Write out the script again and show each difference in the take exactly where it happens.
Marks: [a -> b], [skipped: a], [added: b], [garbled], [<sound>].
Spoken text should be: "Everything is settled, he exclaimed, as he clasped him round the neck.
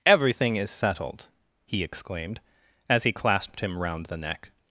"Everything is settled, he exclaimed, as he clasped him round the neck.